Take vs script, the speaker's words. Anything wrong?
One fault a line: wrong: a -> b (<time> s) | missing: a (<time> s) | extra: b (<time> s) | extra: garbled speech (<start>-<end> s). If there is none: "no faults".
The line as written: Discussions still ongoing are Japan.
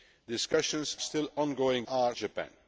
no faults